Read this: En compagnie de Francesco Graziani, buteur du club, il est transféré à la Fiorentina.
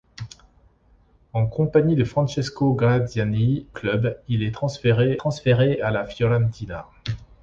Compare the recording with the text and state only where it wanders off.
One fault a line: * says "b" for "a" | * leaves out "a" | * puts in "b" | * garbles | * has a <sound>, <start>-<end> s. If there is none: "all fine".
* leaves out "buteur du"
* puts in "transféré"